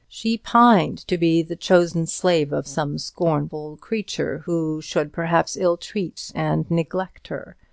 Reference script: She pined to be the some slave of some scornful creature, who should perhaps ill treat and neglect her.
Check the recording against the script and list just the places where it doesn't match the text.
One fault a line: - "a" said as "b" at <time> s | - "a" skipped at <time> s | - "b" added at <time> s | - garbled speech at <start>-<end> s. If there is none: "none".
- "some" said as "chosen" at 1.6 s